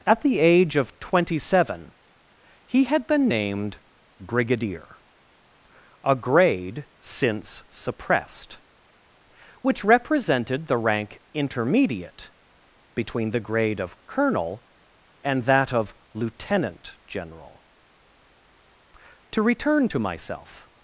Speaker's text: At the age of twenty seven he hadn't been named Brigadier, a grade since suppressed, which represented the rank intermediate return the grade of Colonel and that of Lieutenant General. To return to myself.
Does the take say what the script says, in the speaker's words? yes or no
no